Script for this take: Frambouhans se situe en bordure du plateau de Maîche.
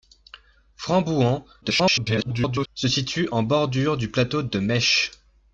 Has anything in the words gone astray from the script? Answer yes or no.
yes